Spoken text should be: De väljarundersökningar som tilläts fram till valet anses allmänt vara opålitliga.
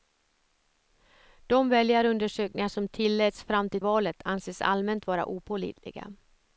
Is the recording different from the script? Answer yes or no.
no